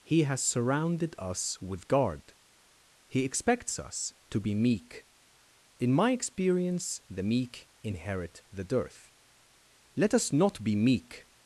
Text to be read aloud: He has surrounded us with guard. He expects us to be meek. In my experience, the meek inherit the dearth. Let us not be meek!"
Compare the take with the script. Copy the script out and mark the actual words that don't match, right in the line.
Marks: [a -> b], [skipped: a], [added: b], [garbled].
He has surrounded us with guard. He expects us to be meek. In my experience, the meek inherit the dearth. Let us not be meek!"